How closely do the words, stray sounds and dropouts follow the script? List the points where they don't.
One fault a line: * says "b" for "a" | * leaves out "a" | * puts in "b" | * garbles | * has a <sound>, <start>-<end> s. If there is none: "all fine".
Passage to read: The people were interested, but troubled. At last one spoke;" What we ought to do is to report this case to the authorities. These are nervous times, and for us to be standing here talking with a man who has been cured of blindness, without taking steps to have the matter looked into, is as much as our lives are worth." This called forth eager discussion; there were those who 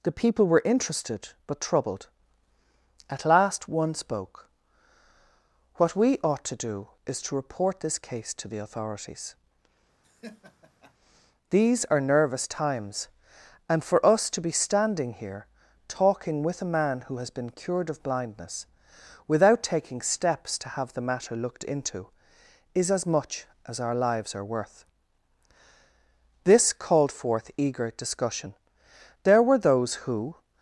* has a laugh, 10.0-10.9 s